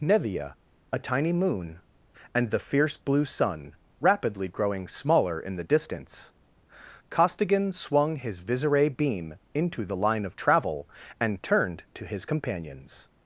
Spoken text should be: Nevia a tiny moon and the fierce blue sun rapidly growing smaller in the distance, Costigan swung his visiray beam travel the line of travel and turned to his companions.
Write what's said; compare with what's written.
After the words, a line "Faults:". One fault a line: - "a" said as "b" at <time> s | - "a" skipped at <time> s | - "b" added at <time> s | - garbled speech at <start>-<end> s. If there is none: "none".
Nevia a tiny moon and the fierce blue sun rapidly growing smaller in the distance, Costigan swung his visiray beam into the line of travel and turned to his companions.
Faults:
- "travel" said as "into" at 9.5 s